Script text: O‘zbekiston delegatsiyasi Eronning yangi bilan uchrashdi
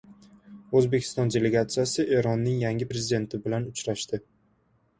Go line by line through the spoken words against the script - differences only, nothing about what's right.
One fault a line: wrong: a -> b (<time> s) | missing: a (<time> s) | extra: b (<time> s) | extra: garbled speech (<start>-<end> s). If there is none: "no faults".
extra: prezidenti (2.9 s)